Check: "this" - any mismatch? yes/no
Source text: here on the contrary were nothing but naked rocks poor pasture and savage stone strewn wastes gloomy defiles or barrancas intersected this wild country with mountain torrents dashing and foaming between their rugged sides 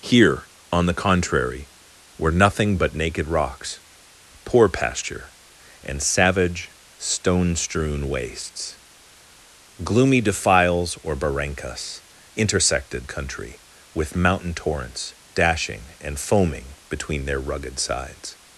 yes